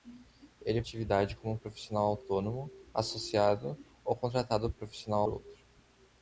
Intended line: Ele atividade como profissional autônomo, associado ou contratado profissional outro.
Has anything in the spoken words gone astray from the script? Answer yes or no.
no